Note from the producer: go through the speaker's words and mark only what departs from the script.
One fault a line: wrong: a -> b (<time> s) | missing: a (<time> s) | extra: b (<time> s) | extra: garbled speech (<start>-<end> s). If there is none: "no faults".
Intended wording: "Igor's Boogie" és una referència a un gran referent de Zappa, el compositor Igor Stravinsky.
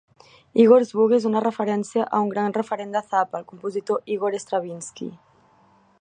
no faults